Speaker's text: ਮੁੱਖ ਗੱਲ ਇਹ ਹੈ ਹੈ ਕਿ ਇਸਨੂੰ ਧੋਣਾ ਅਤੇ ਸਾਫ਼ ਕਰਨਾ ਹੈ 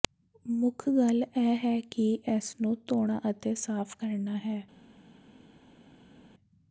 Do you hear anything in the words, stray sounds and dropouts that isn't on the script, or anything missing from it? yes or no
yes